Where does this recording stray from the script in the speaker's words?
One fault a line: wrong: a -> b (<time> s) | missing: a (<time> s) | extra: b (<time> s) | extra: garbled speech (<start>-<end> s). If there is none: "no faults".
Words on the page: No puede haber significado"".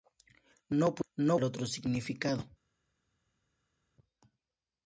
extra: otro (1.4 s)